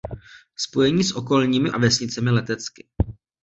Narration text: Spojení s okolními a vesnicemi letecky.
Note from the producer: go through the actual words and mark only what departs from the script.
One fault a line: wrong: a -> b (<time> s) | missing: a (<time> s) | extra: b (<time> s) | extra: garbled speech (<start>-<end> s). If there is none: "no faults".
no faults